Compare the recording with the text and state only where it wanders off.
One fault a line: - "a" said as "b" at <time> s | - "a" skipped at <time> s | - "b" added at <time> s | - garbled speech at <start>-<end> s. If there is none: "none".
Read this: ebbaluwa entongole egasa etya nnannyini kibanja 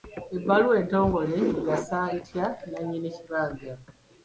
none